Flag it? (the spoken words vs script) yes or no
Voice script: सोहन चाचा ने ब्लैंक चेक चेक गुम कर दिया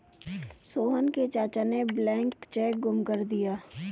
yes